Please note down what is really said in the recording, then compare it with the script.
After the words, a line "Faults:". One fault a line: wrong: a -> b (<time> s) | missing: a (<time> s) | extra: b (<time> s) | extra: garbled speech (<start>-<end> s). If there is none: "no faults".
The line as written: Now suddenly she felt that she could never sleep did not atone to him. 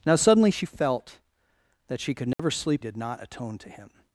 Now suddenly she felt that she could never sleep did not atone to him.
Faults:
no faults